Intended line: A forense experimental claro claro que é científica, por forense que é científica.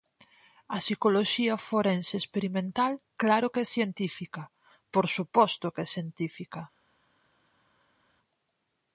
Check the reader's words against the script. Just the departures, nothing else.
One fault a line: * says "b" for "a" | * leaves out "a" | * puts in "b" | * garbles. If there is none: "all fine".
* puts in "psicoloxía"
* leaves out "claro"
* says "suposto" for "forense"